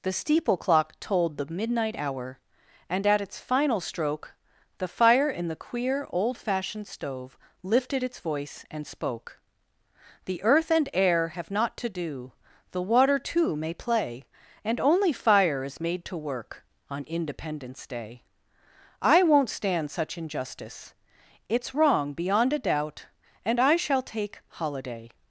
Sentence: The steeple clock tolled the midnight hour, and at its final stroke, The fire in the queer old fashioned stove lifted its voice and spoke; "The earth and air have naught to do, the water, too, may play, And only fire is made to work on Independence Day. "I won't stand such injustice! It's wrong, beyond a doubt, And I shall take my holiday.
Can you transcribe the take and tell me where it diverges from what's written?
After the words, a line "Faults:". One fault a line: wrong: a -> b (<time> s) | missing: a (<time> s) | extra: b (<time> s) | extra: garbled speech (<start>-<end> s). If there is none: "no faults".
The steeple clock tolled the midnight hour, and at its final stroke, The fire in the queer old fashioned stove lifted its voice and spoke; "The earth and air have naught to do, the water, too, may play, And only fire is made to work on Independence Day. "I won't stand such injustice! It's wrong, beyond a doubt, And I shall take holiday.
Faults:
missing: my (24.4 s)